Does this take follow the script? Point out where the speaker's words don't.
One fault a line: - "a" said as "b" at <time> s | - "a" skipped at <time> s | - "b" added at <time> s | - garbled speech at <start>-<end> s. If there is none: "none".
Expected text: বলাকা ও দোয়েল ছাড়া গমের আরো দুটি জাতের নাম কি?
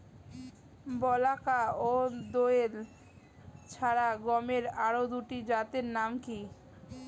none